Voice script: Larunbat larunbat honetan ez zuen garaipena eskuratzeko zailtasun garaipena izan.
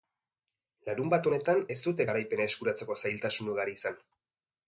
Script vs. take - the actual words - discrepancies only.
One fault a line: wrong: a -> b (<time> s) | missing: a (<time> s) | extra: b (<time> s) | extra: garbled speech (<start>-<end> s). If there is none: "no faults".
missing: larunbat (1.3 s)
wrong: zuen -> dute (1.9 s)
wrong: garaipena -> ugari (3.5 s)